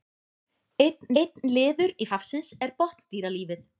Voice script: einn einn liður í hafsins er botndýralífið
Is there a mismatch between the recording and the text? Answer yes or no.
no